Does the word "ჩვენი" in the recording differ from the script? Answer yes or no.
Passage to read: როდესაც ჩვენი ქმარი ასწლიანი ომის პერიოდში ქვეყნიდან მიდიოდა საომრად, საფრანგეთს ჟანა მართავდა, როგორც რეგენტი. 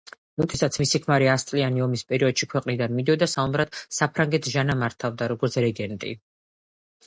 yes